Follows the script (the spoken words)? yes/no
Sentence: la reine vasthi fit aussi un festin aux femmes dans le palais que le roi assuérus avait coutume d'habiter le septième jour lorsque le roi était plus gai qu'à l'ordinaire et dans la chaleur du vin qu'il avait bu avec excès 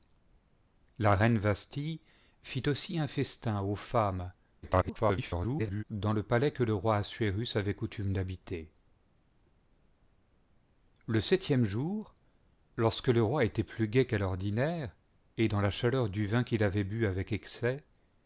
no